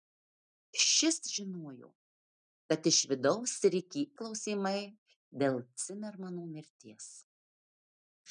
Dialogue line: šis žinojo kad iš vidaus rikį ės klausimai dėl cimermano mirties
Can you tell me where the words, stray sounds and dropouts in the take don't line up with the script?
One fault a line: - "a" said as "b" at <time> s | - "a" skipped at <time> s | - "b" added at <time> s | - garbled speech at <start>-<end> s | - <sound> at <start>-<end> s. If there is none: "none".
- "ės" skipped at 4.0 s